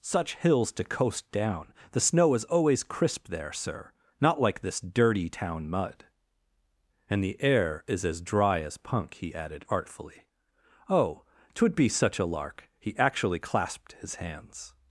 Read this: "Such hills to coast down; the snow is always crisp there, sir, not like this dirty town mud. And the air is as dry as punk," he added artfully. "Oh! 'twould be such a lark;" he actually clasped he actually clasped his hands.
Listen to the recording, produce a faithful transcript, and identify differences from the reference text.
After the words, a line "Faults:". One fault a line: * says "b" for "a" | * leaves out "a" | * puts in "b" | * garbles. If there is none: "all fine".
"Such hills to coast down; the snow is always crisp there, sir, not like this dirty town mud. And the air is as dry as punk," he added artfully. "Oh! 'twould be such a lark;" he actually clasped his hands.
Faults:
* leaves out "he actually clasped"